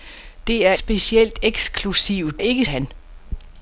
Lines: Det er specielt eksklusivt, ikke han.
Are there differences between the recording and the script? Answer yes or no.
no